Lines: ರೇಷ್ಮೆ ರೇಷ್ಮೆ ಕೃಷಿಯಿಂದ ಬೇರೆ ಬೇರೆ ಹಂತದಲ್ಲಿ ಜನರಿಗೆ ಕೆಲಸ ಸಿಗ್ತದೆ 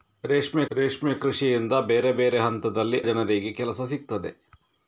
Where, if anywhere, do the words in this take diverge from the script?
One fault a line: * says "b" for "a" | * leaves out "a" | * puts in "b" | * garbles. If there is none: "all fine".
all fine